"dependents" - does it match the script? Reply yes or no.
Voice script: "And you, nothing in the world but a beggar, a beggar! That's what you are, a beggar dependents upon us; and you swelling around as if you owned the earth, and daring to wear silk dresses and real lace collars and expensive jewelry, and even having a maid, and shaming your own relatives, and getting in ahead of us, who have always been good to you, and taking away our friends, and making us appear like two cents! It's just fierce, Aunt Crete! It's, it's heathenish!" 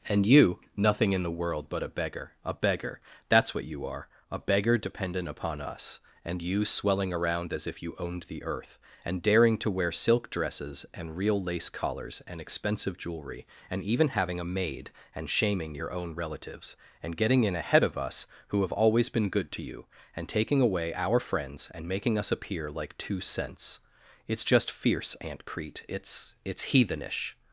no